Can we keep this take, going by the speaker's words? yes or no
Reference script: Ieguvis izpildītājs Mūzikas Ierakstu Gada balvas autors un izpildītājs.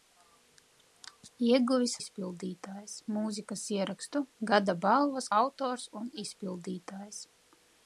yes